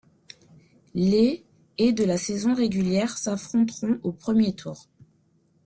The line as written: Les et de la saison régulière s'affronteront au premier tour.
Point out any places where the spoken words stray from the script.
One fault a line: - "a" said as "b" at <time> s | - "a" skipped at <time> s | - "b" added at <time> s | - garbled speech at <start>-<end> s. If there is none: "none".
none